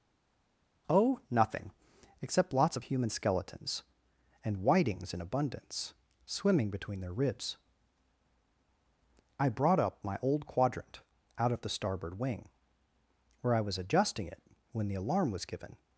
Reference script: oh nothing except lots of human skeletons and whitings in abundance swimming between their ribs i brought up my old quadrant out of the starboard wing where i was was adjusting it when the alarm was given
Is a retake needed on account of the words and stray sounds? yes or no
yes